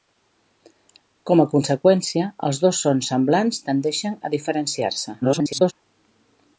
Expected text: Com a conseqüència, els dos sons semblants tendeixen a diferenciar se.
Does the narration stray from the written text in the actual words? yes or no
yes